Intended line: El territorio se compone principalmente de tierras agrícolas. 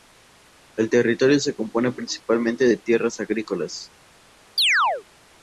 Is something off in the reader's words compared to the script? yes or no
no